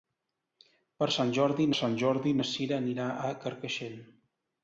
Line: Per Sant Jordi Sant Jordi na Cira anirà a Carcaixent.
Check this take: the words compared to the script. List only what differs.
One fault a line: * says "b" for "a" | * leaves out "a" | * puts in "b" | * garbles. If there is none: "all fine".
all fine